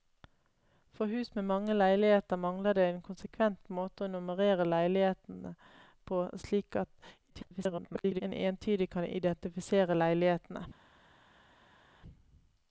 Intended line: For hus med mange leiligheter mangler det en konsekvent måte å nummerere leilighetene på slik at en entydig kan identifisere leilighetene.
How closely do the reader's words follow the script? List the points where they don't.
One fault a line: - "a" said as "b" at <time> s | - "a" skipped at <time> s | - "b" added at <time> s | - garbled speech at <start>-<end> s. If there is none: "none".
- garbled speech at 7.3-8.2 s